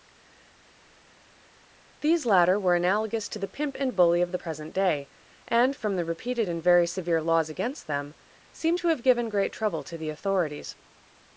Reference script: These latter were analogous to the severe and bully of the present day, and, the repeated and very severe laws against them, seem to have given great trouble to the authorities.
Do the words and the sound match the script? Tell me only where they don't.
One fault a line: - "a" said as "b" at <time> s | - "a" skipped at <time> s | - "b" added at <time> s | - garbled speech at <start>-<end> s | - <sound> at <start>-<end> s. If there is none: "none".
- "severe" said as "pimp" at 3.5 s
- "from" added at 5.7 s